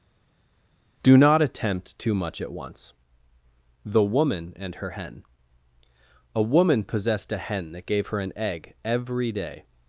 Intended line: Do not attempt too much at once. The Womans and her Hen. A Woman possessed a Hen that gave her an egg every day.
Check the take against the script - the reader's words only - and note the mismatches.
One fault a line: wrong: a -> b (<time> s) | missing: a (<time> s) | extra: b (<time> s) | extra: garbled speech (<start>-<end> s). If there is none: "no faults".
wrong: Womans -> Woman (4.0 s)